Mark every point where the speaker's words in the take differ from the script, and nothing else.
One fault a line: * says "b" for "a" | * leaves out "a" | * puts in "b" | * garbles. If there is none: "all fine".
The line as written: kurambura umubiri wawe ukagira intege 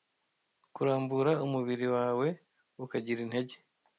all fine